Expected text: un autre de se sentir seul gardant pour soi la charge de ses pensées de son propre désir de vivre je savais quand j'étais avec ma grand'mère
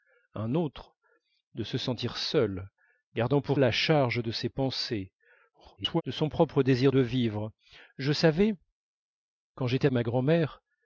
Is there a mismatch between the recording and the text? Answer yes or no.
yes